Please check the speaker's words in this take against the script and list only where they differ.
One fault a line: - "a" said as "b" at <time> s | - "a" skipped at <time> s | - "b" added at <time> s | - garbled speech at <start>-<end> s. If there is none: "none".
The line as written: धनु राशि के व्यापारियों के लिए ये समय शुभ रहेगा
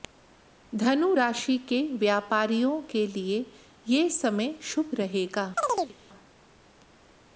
none